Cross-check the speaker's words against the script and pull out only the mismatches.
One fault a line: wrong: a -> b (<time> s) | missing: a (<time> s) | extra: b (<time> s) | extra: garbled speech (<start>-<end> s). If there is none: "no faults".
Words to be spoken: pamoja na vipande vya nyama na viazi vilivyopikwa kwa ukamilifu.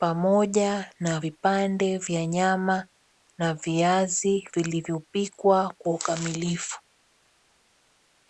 no faults